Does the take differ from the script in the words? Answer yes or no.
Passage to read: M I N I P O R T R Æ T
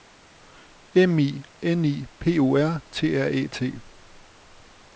no